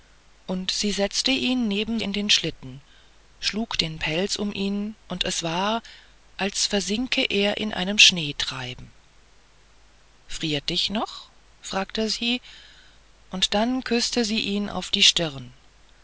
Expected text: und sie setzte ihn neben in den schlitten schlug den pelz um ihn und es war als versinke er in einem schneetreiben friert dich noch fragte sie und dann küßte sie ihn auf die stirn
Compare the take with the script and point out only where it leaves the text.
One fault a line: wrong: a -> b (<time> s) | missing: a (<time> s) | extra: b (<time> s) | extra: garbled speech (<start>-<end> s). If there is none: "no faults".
no faults